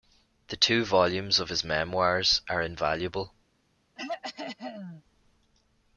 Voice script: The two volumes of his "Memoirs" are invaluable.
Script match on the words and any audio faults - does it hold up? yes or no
no